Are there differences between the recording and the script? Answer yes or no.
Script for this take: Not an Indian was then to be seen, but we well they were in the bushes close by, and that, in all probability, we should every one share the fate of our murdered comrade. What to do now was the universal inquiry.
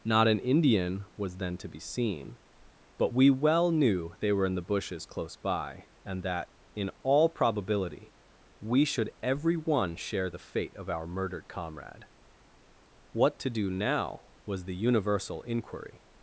yes